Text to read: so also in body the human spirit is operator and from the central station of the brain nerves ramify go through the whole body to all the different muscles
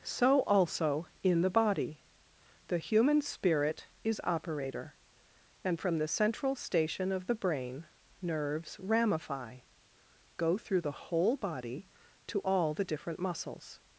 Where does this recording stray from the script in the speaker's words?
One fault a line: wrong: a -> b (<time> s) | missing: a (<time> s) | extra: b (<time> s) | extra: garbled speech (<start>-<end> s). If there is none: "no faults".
extra: the (1.4 s)